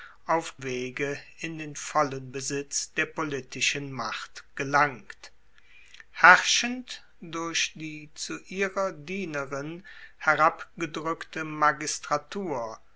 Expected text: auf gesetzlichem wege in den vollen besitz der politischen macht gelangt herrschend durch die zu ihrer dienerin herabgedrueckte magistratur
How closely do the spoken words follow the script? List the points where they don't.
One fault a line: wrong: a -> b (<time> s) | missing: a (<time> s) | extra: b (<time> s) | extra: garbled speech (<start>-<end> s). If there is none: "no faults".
missing: gesetzlichem (0.6 s)